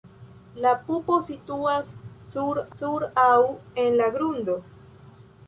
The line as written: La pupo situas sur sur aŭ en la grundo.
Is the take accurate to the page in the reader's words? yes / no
yes